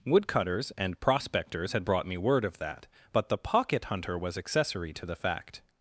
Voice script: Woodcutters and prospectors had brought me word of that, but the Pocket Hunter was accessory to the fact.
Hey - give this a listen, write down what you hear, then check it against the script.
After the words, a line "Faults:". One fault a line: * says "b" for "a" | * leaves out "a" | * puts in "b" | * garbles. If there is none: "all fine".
Woodcutters and prospectors had brought me word of that, but the Pocket Hunter was accessory to the fact.
Faults:
all fine